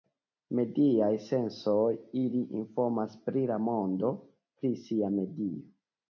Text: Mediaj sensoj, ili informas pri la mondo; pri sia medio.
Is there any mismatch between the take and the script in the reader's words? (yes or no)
no